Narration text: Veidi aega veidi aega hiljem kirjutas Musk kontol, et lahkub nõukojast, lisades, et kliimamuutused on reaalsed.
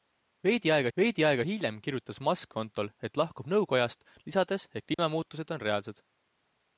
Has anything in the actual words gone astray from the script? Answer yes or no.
no